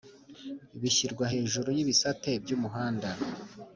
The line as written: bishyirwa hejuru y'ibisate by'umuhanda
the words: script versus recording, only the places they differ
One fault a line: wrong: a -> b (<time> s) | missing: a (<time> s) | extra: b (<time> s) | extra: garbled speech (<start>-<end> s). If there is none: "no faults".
no faults